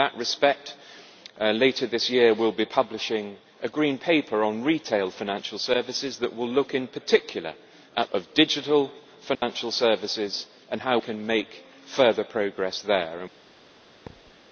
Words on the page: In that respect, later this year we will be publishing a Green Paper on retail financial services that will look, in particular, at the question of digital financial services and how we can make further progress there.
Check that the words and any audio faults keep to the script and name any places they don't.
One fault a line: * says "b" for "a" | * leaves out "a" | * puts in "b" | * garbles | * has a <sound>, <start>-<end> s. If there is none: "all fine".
* leaves out "the question"
* has a dropout, 9.3-9.4 s
* leaves out "we"
* has a thud, 14.1-14.4 s